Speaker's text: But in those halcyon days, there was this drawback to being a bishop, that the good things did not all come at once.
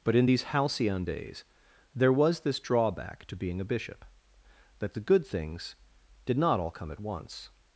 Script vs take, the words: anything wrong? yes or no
yes